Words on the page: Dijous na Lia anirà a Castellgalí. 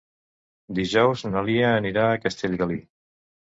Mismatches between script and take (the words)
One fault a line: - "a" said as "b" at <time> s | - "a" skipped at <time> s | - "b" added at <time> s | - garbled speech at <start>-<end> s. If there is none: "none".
none